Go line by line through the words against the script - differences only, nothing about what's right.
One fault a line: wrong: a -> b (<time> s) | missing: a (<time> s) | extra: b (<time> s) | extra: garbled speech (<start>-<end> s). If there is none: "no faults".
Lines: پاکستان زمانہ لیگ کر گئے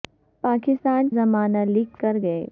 no faults